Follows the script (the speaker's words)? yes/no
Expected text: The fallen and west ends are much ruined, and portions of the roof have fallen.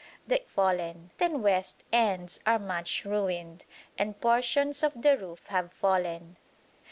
yes